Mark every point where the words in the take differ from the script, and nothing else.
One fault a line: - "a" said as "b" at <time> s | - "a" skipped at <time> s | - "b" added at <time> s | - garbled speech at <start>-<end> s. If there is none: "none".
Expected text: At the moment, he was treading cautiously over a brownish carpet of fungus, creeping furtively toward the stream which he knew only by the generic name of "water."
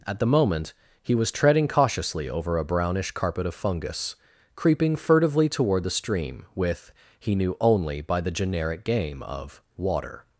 - "which" said as "with" at 6.5 s
- "name" said as "game" at 8.8 s